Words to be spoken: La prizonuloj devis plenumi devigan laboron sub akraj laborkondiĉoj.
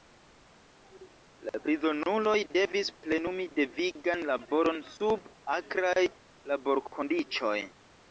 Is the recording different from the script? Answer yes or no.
no